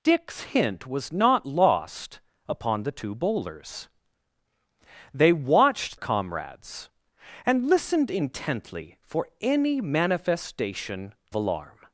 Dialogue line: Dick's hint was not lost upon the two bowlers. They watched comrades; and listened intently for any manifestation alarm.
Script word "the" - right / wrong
right